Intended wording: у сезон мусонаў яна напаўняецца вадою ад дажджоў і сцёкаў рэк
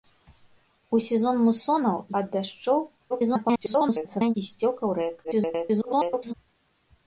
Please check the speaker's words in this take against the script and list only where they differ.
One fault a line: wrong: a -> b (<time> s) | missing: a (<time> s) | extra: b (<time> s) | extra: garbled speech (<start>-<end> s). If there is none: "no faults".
missing: яна напаўняецца вадою (2.0 s)
extra: garbled speech (3.1-4.3 s)
extra: garbled speech (5.2-6.3 s)